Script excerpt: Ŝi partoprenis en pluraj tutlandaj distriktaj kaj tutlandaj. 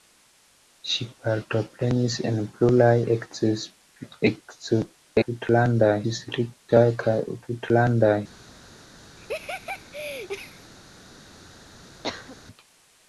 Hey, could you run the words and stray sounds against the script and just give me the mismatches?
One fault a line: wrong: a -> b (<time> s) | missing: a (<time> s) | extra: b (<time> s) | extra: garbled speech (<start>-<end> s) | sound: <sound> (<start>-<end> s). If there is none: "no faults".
sound: laugh (9.2-10.7 s)
sound: cough (12.0-12.4 s)